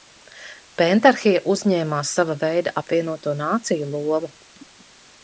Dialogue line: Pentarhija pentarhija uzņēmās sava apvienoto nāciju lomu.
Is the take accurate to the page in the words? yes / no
no